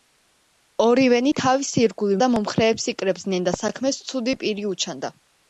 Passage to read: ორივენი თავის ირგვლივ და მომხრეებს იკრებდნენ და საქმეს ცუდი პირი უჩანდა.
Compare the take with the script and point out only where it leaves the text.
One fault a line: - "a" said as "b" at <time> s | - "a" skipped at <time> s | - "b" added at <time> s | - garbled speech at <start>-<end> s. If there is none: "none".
none